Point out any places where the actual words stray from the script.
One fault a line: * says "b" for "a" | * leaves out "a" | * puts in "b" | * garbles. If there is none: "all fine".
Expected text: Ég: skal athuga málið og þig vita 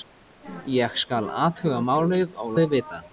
all fine